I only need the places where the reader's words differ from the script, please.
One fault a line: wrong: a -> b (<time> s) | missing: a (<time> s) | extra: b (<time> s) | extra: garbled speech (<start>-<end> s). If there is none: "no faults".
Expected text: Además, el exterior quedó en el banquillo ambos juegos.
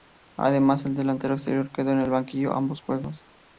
extra: delantero (0.9 s)